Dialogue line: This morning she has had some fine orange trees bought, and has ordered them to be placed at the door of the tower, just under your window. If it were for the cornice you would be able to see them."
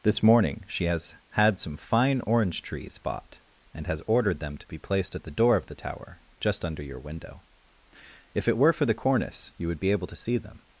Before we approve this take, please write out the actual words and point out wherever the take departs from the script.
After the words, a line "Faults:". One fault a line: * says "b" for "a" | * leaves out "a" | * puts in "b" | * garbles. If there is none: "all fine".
This morning she has had some fine orange trees bought, and has ordered them to be placed at the door of the tower, just under your window. If it were for the cornice you would be able to see them."
Faults:
all fine